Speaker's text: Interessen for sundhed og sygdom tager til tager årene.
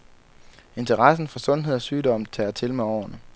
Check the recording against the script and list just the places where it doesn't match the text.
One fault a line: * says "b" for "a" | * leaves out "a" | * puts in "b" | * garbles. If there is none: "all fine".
* says "med" for "tager"